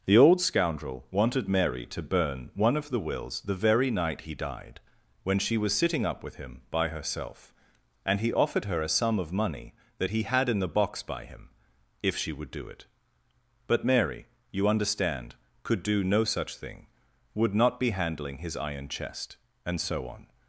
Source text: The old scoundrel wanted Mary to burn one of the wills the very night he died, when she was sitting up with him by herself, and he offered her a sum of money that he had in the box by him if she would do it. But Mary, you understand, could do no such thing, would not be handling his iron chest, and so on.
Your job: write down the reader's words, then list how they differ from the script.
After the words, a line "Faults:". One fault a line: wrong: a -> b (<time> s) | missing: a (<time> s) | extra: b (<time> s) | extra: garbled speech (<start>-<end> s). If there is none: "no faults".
The old scoundrel wanted Mary to burn one of the wills the very night he died, when she was sitting up with him by herself, and he offered her a sum of money that he had in the box by him if she would do it. But Mary, you understand, could do no such thing, would not be handling his iron chest, and so on.
Faults:
no faults